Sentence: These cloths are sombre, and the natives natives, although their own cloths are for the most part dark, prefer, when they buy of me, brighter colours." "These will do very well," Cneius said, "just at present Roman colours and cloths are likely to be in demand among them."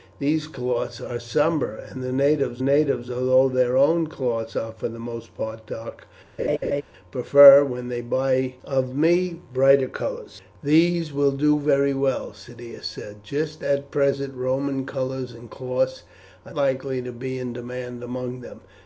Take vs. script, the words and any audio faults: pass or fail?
fail